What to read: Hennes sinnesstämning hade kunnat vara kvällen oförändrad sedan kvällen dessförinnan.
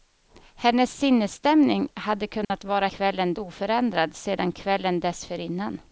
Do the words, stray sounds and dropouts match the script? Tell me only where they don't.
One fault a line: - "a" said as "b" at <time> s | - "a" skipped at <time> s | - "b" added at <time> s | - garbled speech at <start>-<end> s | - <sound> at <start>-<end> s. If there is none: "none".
- dropout at 2.4-2.5 s